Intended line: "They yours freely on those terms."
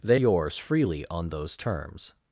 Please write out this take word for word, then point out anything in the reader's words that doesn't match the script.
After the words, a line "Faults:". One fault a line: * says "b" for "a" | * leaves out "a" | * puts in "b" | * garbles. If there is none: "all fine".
"They yours freely on those terms."
Faults:
all fine